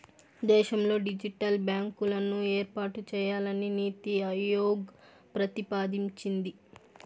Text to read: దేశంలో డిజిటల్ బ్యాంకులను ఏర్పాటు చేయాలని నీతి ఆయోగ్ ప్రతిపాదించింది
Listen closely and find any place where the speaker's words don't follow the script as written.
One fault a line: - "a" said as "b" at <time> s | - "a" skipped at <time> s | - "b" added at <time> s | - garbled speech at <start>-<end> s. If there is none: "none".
none